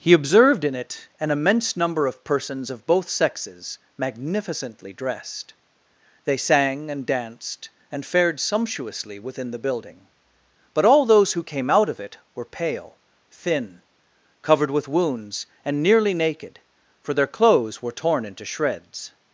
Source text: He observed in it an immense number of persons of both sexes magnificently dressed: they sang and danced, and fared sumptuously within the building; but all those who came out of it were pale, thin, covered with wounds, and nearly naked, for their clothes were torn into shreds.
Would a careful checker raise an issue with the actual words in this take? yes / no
no